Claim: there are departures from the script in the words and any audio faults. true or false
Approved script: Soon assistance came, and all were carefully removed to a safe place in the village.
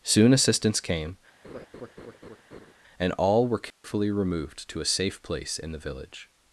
true